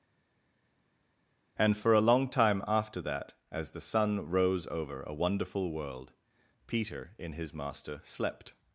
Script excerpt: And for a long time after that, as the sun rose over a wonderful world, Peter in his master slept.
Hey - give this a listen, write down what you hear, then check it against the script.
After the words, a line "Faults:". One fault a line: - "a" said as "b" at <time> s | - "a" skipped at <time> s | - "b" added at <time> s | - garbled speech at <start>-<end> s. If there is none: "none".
And for a long time after that, as the sun rose over a wonderful world, Peter in his master slept.
Faults:
none